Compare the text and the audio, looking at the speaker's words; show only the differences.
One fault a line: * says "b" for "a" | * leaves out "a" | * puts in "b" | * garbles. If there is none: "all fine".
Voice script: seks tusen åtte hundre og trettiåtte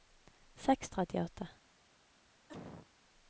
* leaves out "tusen åtte hundre"